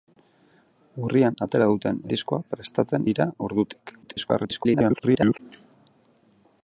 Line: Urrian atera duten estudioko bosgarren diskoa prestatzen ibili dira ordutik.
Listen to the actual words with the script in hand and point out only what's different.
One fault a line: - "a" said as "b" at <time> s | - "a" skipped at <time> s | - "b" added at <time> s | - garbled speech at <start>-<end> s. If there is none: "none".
- "estudioko bosgarren" skipped at 2.0 s
- "ibili" skipped at 3.1 s
- garbled speech at 4.0-5.4 s